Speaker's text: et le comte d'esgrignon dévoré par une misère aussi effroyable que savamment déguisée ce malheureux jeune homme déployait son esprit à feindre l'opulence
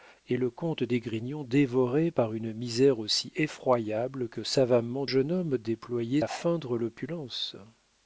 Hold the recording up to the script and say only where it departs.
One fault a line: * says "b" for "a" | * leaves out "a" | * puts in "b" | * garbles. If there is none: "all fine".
* leaves out "déguisée ce malheureux"
* leaves out "son esprit"